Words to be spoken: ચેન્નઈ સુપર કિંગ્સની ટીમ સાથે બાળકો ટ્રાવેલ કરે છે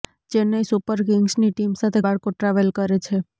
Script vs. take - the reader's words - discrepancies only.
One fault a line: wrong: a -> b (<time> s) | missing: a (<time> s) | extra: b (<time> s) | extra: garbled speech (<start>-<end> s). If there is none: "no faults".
no faults